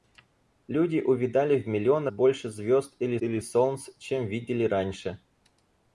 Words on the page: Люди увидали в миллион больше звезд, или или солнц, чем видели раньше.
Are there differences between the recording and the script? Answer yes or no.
no